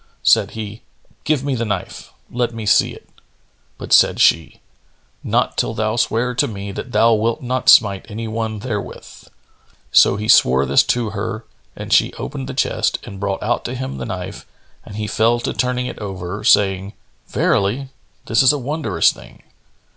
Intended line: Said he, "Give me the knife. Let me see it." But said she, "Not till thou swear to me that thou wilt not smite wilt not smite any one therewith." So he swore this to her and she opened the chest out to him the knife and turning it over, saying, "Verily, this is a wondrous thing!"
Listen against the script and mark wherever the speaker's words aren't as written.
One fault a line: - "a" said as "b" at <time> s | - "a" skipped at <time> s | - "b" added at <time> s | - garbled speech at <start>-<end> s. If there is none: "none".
- "wilt not smite" skipped at 8.1 s
- "and brought" added at 13.0 s
- "he fell to" added at 14.9 s